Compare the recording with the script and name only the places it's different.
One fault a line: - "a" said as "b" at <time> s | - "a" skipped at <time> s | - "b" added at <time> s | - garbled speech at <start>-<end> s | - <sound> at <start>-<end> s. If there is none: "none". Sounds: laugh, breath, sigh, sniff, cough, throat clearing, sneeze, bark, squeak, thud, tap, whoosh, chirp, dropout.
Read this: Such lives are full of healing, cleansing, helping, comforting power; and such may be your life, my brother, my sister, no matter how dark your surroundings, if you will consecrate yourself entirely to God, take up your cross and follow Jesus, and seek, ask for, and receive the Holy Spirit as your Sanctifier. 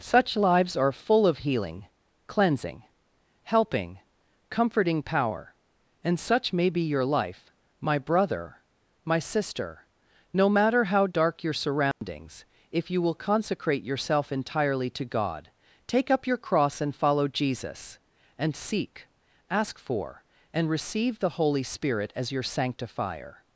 - dropout at 11.9-12.0 s